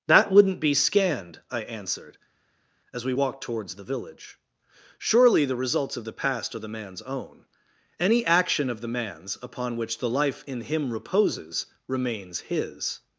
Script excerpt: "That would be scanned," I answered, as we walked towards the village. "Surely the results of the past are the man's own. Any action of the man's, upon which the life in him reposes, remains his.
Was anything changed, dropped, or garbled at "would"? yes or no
yes